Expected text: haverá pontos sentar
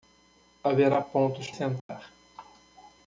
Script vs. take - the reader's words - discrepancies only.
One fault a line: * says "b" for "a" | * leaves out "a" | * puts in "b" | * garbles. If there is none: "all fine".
all fine